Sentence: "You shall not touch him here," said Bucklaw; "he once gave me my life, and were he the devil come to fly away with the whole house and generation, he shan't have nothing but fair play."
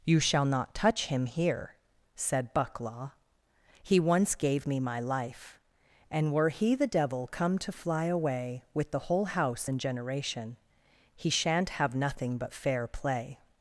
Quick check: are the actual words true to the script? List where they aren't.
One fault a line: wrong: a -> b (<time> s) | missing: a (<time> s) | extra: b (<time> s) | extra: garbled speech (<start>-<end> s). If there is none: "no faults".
no faults